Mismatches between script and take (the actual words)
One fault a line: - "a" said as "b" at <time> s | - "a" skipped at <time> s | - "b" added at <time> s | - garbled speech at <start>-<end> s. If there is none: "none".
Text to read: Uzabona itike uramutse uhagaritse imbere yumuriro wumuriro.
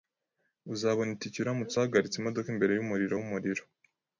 - "imodoka" added at 2.2 s